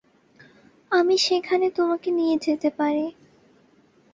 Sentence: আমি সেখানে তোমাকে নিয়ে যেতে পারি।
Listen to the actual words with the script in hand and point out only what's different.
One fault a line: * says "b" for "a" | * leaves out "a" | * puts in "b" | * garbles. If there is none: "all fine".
all fine